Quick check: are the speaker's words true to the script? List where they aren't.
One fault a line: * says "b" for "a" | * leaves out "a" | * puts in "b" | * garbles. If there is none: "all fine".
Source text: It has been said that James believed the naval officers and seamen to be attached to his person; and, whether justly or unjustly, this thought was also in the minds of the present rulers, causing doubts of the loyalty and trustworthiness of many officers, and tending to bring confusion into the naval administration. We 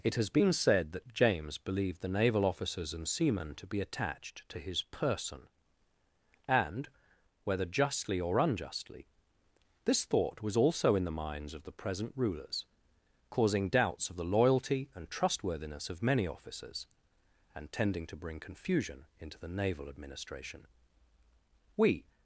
all fine